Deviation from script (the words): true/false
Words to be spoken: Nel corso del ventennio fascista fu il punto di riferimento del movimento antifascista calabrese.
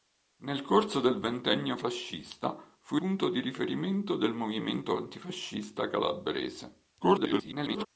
true